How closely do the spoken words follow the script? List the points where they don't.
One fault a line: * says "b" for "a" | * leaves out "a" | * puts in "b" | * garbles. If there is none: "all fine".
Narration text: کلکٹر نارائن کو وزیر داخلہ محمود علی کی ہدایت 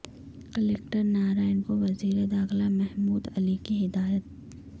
all fine